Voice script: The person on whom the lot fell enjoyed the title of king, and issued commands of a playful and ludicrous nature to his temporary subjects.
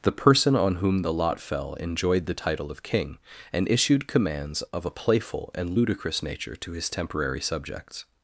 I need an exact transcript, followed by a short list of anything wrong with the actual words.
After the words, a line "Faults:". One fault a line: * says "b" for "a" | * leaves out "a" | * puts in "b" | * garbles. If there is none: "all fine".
The person on whom the lot fell enjoyed the title of king, and issued commands of a playful and ludicrous nature to his temporary subjects.
Faults:
all fine